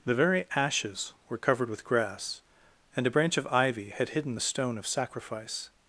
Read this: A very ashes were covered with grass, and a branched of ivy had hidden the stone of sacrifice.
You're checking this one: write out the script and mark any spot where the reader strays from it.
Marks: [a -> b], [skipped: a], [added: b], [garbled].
[A -> The] very ashes were covered with grass, and a [branched -> branch] of ivy had hidden the stone of sacrifice.